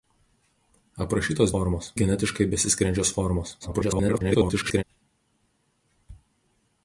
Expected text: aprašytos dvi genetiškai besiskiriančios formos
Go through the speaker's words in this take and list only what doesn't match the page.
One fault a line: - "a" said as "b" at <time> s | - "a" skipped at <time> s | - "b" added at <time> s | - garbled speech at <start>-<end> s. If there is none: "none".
- "dvi" said as "formos" at 1.5 s
- garbled speech at 3.6-4.8 s